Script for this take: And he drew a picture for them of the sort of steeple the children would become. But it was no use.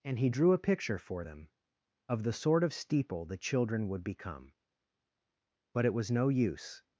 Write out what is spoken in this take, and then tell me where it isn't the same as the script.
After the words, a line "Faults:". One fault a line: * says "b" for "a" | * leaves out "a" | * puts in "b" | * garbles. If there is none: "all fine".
And he drew a picture for them of the sort of steeple the children would become. But it was no use.
Faults:
all fine